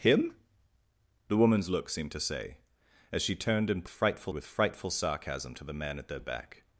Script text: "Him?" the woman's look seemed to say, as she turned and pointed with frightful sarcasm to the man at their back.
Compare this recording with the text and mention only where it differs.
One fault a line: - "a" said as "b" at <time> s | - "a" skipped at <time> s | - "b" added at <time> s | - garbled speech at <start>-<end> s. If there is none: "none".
- "pointed" said as "frightful" at 3.9 s